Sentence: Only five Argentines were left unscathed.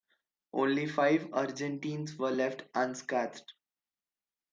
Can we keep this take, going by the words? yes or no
yes